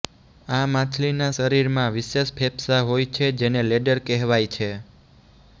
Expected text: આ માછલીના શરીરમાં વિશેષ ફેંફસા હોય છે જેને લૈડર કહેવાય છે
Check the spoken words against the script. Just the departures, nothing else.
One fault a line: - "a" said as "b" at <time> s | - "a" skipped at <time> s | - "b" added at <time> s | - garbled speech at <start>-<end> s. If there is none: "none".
none